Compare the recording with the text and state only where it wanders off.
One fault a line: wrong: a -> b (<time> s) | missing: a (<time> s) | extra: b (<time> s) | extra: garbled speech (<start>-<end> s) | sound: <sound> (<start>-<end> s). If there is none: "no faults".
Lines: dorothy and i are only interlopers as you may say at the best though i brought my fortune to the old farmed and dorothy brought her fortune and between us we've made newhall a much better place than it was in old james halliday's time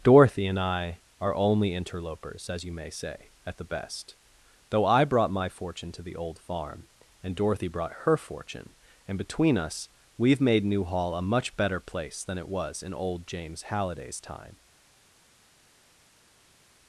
wrong: farmed -> farm (6.4 s)